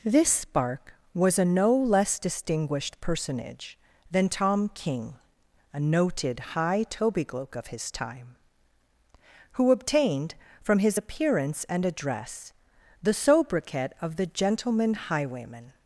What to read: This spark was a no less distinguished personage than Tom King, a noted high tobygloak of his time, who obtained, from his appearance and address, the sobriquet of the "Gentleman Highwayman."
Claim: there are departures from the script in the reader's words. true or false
false